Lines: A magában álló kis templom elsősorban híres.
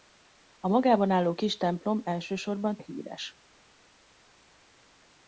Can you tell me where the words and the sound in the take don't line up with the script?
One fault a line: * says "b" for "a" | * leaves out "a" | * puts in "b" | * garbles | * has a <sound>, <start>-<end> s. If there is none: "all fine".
all fine